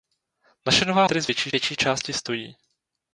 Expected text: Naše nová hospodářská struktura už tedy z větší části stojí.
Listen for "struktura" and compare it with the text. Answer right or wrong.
wrong